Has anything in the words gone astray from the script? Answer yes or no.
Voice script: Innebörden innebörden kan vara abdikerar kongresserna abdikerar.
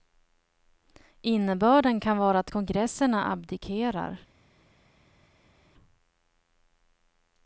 yes